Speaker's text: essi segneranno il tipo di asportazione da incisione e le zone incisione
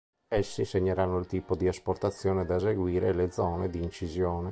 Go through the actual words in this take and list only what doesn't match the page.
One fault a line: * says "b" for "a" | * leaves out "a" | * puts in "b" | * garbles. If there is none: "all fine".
* says "eseguire" for "incisione"
* puts in "di"